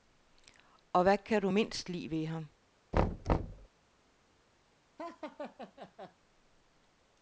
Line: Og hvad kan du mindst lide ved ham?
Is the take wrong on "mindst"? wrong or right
right